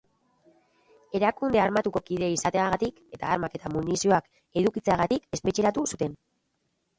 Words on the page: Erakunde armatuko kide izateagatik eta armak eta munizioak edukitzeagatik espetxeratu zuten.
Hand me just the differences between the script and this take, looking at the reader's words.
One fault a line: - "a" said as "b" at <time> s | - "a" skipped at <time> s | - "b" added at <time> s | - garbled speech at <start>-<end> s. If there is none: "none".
none